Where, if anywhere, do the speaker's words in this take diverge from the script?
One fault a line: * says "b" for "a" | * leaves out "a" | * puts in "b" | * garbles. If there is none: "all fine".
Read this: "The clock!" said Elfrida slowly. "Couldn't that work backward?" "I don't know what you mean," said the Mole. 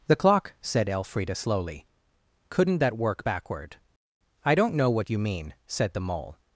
all fine